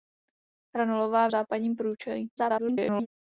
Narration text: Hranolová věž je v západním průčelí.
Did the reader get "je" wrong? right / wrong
wrong